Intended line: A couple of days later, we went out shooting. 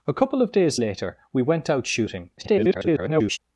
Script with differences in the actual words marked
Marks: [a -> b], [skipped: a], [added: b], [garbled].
A couple of days later, we went out shooting. [garbled]